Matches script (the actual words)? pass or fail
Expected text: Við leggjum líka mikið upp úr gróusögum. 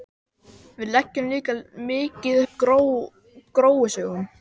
fail